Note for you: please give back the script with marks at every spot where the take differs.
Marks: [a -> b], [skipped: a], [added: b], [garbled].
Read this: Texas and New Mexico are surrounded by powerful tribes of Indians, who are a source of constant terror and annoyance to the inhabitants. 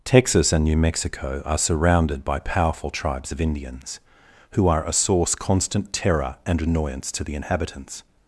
Texas and New Mexico are surrounded by powerful tribes of Indians, who are a source [skipped: of] constant terror and annoyance to the inhabitants.